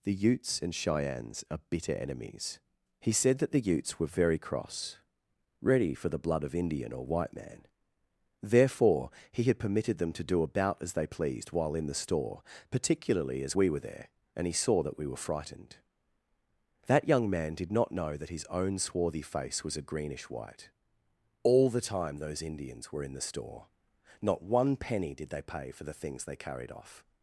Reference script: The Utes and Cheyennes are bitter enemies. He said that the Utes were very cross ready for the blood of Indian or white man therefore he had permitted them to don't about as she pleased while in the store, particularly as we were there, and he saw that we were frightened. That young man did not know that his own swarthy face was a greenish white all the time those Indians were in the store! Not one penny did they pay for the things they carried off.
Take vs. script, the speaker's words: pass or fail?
fail